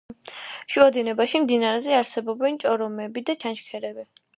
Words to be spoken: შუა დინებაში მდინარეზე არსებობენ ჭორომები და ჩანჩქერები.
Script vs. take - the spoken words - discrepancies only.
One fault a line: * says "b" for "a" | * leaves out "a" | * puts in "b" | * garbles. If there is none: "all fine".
all fine